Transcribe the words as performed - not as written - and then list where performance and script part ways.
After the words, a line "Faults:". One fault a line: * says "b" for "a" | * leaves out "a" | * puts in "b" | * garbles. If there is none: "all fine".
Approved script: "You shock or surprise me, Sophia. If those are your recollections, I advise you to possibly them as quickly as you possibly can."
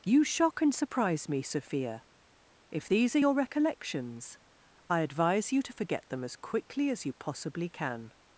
"You shock and surprise me, Sophia. If these are your recollections, I advise you to forget them as quickly as you possibly can."
Faults:
* says "and" for "or"
* says "these" for "those"
* says "forget" for "possibly"